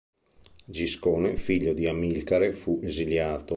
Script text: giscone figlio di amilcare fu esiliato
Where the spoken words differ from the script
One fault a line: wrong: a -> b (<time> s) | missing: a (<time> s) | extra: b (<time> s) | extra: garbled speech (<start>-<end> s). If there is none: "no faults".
no faults